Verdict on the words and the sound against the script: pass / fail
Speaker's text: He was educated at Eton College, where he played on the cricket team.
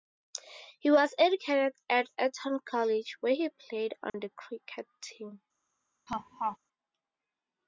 fail